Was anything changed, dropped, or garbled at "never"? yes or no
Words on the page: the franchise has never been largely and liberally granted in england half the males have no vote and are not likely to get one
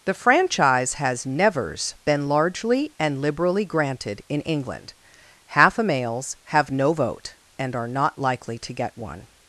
yes